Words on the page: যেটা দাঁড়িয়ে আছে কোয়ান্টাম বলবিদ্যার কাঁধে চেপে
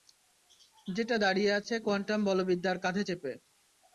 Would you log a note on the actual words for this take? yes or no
no